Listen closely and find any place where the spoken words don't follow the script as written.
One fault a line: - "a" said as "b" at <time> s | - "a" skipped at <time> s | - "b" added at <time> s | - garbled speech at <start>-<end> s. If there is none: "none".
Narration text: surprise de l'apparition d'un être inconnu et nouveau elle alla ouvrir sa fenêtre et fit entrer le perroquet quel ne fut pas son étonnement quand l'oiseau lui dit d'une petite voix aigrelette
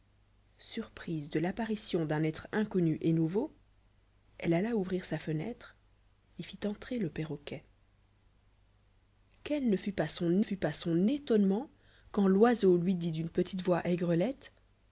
- "fut pas son" added at 10.4 s